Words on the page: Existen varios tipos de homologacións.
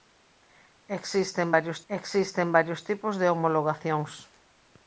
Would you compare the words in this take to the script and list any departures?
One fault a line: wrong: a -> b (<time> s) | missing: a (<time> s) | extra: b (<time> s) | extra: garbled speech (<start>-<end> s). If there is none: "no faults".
extra: existen varios (1.9 s)